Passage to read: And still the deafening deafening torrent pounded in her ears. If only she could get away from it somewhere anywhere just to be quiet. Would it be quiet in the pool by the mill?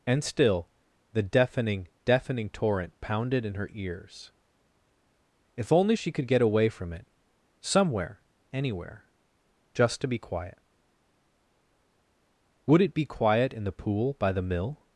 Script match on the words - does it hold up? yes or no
yes